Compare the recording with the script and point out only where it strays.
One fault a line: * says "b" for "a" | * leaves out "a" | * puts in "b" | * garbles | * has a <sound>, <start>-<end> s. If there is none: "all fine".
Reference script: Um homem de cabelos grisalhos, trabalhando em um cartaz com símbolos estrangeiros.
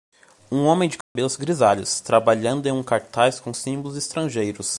* has a dropout, 1.0-1.2 s